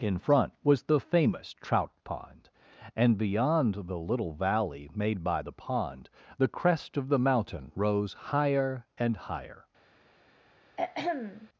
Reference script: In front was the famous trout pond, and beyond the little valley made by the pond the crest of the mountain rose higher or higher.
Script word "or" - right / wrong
wrong